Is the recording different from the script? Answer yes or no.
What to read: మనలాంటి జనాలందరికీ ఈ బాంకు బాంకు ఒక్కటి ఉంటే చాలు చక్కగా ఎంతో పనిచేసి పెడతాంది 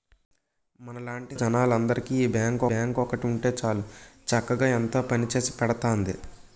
no